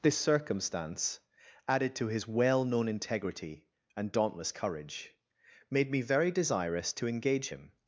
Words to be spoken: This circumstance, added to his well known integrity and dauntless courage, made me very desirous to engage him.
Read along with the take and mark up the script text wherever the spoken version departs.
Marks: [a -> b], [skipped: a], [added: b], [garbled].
This circumstance, added to his well known integrity and dauntless courage, made me very desirous to engage him.